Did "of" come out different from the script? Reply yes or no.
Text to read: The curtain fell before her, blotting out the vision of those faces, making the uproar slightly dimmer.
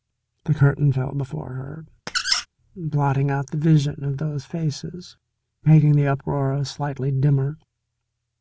no